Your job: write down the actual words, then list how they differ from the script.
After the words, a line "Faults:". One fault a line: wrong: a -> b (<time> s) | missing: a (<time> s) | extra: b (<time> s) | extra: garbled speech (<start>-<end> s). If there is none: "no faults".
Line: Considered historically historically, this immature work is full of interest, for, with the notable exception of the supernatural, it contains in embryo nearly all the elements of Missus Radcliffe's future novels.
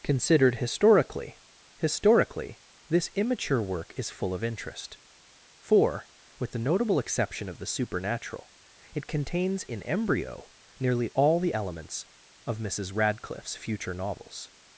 Considered historically historically, this immature work is full of interest, for, with the notable exception of the supernatural, it contains in embryo nearly all the elements of Missus Radcliffe's future novels.
Faults:
no faults